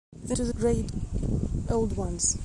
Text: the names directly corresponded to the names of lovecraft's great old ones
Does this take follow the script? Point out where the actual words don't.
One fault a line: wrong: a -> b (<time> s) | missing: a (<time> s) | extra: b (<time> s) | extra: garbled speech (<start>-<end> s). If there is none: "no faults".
missing: names directly corresponded (0.3 s)
missing: names of lovecraft's (0.5 s)